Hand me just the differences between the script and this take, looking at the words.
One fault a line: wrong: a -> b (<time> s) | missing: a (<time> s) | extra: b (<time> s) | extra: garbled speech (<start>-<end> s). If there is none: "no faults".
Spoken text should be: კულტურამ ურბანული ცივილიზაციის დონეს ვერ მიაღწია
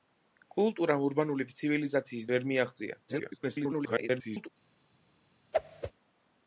missing: დონეს (2.3 s)
extra: garbled speech (3.1-4.5 s)